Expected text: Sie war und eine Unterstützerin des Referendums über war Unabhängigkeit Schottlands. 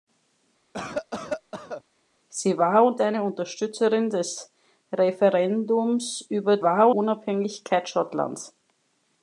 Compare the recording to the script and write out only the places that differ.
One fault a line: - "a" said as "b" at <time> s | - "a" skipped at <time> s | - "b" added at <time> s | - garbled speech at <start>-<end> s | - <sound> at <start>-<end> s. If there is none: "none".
- cough at 0.7-1.8 s